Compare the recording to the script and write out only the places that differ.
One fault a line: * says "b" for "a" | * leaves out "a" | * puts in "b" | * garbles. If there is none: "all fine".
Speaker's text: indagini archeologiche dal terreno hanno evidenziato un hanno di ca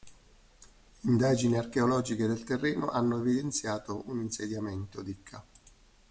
* says "del" for "dal"
* says "insediamento" for "hanno"